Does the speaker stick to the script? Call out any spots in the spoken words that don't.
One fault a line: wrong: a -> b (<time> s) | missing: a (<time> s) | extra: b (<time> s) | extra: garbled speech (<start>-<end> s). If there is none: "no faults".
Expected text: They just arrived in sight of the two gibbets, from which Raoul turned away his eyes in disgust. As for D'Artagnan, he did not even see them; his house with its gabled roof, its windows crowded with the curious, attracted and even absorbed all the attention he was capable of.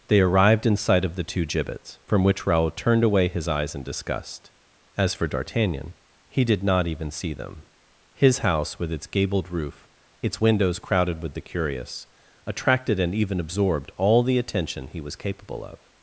missing: just (0.2 s)